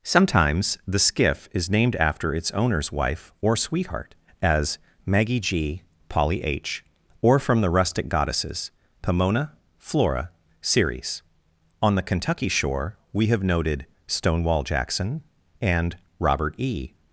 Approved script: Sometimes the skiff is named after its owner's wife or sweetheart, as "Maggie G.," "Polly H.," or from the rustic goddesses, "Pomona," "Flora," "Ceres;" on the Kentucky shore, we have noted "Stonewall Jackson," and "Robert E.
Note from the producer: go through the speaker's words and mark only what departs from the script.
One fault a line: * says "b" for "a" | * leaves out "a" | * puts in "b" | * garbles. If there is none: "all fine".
all fine